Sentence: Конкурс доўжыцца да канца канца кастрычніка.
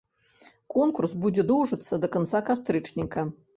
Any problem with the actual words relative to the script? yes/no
yes